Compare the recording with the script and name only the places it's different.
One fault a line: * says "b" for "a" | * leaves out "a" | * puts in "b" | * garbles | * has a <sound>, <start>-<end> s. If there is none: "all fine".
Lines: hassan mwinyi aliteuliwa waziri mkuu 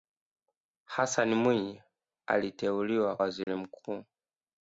* has a dropout, 3.4-3.5 s